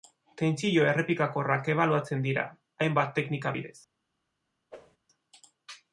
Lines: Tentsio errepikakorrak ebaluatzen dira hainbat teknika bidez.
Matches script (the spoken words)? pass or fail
pass